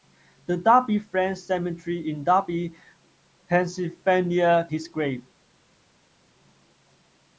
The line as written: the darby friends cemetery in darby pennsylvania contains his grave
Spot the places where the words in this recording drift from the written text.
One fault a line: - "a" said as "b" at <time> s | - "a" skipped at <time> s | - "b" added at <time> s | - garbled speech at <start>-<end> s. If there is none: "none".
- "contains" skipped at 4.6 s